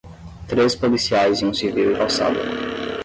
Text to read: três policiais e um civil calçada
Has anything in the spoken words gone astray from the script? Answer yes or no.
no